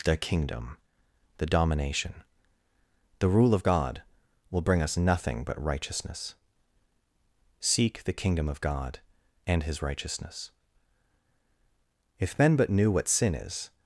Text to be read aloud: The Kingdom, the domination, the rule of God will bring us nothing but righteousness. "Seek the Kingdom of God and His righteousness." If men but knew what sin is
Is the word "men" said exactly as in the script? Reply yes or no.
yes